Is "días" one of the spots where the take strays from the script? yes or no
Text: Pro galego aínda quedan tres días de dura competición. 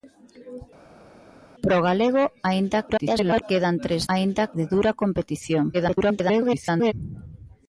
yes